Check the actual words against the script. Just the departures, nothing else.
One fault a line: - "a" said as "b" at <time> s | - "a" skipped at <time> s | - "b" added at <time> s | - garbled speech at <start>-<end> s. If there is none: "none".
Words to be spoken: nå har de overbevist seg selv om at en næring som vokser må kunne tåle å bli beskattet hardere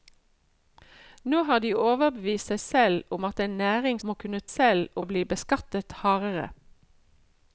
- "som vokser" skipped at 4.0 s
- "tåle" said as "selv" at 4.5 s